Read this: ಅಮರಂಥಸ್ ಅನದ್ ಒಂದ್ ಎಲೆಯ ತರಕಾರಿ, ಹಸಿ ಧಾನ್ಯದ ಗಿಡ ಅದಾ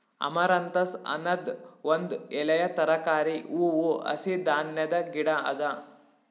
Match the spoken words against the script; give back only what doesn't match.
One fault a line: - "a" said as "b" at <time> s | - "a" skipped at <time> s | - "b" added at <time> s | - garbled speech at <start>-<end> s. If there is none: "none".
- "ಹೂವು" added at 3.5 s